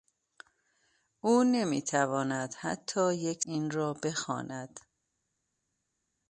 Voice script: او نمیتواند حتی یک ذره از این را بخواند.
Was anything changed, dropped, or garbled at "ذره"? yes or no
yes